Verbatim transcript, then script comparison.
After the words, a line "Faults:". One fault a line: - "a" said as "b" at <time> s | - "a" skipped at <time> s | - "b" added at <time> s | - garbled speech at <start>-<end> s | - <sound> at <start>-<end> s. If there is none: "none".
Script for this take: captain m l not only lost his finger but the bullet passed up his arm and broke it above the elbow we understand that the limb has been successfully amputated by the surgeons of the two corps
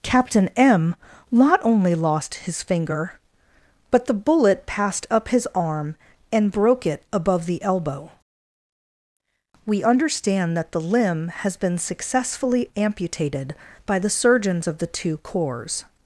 captain m not only lost his finger but the bullet passed up his arm and broke it above the elbow we understand that the limb has been successfully amputated by the surgeons of the two corps
Faults:
- "l" skipped at 0.9 s